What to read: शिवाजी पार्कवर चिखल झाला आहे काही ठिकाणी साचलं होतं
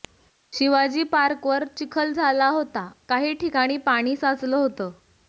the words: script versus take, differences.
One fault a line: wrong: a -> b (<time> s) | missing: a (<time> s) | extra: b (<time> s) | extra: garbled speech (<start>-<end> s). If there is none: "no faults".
wrong: आहे -> होता (2.5 s)
extra: पाणी (3.8 s)